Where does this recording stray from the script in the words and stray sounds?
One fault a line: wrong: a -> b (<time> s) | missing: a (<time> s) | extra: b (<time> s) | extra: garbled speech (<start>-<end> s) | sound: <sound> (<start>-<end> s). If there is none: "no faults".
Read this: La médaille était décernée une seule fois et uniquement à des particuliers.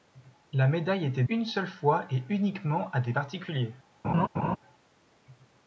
missing: décernée (1.2 s)
sound: laugh (4.0-4.6 s)